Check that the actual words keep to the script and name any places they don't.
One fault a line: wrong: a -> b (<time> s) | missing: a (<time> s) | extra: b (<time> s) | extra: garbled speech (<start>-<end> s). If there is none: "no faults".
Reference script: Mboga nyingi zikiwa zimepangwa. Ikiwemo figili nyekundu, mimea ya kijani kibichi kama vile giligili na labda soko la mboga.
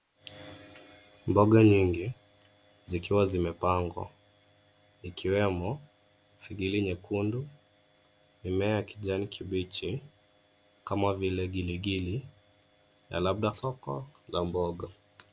no faults